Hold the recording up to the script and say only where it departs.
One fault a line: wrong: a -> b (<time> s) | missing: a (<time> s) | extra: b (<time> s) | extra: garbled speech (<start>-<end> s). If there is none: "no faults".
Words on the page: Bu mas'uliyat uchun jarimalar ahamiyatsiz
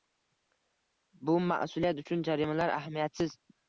no faults